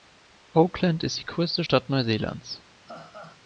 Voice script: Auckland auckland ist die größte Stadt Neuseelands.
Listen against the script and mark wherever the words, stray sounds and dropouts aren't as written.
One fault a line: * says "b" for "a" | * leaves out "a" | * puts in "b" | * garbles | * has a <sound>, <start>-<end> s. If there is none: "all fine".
* leaves out "auckland"
* has a laugh, 2.9-3.4 s